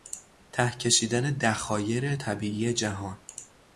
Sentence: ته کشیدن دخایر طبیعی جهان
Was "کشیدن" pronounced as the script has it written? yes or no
yes